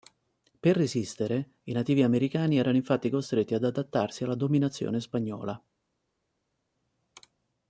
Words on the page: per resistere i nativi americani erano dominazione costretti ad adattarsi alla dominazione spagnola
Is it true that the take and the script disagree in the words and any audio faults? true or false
true